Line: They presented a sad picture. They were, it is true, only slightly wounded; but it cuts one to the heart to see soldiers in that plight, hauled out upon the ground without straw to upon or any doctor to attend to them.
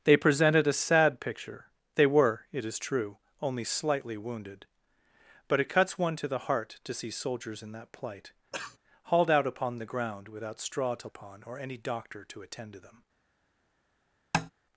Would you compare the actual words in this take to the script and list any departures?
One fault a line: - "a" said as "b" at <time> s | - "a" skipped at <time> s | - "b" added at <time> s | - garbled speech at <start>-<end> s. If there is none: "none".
none